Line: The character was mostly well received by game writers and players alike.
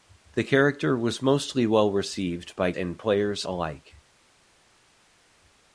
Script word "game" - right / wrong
wrong